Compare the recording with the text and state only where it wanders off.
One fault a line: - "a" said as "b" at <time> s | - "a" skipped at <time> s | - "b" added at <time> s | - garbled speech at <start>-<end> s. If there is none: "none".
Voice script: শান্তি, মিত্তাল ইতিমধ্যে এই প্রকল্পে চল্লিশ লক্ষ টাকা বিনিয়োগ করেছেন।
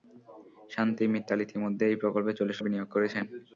- "লক্ষ টাকা" skipped at 2.6 s